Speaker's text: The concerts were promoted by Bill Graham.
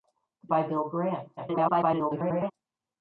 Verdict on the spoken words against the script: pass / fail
fail